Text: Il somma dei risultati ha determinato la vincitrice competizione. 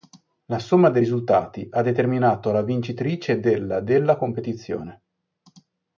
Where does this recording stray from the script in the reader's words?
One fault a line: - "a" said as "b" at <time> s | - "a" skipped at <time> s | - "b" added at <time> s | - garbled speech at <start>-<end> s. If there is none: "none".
- "Il" said as "La" at 0.5 s
- "della della" added at 3.4 s